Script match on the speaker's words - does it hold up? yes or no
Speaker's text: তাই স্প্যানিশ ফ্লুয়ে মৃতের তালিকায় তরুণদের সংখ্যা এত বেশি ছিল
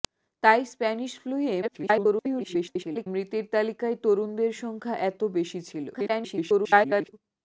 no